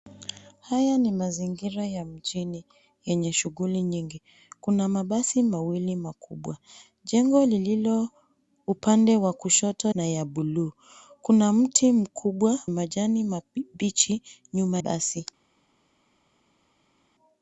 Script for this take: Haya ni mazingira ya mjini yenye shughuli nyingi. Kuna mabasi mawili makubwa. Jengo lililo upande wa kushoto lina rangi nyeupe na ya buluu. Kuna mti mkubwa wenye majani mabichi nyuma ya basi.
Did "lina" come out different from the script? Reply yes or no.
yes